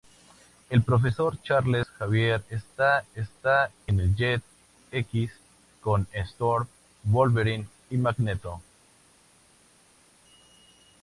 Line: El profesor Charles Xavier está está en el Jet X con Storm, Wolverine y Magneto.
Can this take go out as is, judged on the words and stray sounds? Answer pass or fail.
pass